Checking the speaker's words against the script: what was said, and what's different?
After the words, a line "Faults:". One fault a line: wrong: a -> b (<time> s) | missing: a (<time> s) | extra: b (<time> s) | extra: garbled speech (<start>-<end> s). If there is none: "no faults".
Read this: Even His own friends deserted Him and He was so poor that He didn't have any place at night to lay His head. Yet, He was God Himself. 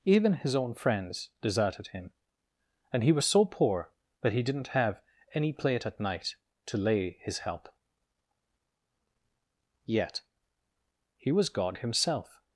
Even His own friends deserted Him and He was so poor that He didn't have any plate at night to lay His help. Yet, He was God Himself.
Faults:
wrong: place -> plate (5.5 s)
wrong: head -> help (7.4 s)